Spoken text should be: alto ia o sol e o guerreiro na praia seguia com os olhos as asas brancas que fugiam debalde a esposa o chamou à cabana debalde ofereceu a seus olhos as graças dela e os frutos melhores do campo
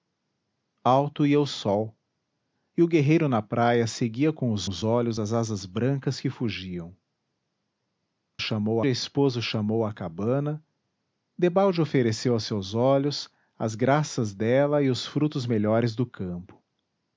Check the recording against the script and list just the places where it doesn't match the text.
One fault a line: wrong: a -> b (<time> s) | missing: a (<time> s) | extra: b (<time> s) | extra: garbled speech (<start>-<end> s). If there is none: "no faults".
extra: os (4.6 s)
wrong: debalde -> chamou (8.4 s)